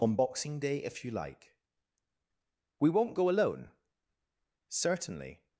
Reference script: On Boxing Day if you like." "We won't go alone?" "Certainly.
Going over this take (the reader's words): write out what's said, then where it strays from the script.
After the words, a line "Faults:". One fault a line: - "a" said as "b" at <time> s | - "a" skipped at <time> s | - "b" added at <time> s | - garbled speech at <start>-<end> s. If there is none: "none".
On Boxing Day if you like." "We won't go alone?" "Certainly.
Faults:
none